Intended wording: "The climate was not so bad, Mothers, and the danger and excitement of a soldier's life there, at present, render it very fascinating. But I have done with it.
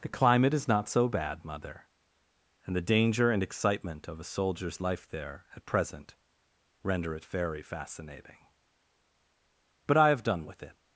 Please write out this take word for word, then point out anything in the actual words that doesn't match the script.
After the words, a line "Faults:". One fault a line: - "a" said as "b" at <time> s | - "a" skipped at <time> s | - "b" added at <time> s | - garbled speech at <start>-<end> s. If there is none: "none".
"The climate is not so bad, Mother, and the danger and excitement of a soldier's life there, at present, render it very fascinating. But I have done with it.
Faults:
- "was" said as "is" at 0.5 s
- "Mothers" said as "Mother" at 1.4 s